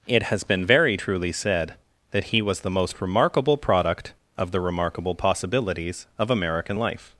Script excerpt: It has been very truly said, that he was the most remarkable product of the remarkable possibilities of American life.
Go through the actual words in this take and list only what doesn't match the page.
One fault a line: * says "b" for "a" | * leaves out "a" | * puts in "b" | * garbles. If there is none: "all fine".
all fine